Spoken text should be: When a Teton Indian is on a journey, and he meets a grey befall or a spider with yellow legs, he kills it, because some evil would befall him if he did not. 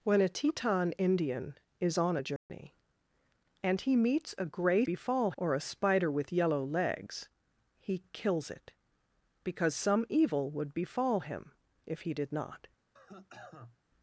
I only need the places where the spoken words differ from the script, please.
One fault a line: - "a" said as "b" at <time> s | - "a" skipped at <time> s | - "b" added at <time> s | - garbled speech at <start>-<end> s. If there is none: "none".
none